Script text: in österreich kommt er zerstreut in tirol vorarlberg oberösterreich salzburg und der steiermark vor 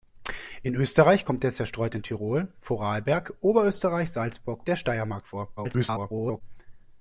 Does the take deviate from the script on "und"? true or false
true